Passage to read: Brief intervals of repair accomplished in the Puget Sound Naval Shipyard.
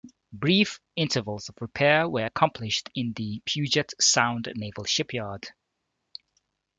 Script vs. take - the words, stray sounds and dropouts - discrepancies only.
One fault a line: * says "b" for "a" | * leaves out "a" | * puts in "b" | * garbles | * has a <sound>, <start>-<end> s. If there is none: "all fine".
* puts in "were"